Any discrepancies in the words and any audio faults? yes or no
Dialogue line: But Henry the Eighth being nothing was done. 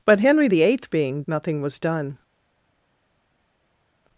no